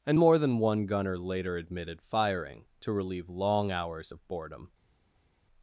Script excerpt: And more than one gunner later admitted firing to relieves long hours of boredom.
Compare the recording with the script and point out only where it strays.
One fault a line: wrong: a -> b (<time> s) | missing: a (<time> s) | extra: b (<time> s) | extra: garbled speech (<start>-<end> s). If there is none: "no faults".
wrong: relieves -> relieve (2.9 s)